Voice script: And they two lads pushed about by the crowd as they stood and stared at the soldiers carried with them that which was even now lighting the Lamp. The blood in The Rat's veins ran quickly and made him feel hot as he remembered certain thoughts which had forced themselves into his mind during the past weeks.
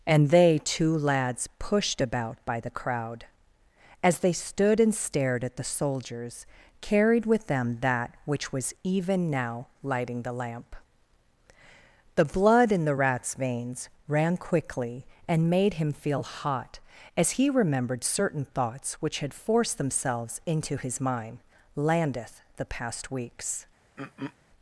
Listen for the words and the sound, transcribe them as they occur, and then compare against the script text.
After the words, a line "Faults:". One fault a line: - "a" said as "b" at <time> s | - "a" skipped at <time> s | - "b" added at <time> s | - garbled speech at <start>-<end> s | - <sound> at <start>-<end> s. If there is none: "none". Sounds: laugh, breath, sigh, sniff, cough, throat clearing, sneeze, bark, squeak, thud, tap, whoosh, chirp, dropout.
And they two lads pushed about by the crowd as they stood and stared at the soldiers carried with them that which was even now lighting the Lamp. The blood in The Rat's veins ran quickly and made him feel hot as he remembered certain thoughts which had forced themselves into his mind landeth the past weeks.
Faults:
- "during" said as "landeth" at 21.8 s
- throat clearing at 24.0-24.4 s